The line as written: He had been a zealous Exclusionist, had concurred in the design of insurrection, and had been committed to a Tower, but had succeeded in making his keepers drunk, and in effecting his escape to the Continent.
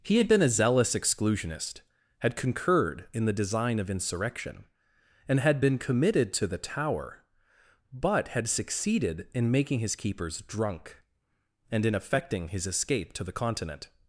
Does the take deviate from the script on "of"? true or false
false